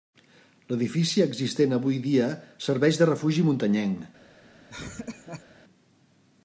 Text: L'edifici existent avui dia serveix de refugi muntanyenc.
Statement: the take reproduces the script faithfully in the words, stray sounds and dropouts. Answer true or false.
false